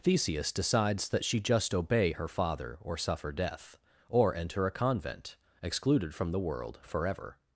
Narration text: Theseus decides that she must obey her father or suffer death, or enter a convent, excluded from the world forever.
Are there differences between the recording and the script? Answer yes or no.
yes